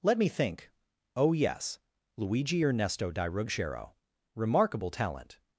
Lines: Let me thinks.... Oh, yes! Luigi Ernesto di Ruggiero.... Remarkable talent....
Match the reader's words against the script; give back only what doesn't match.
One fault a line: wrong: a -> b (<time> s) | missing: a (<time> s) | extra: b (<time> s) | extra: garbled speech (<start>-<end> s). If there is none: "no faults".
wrong: thinks -> think (0.3 s)